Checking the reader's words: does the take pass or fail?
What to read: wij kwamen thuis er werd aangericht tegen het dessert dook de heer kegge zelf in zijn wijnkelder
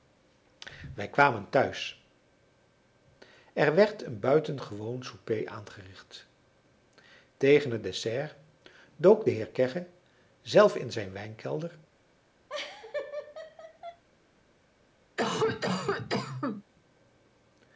fail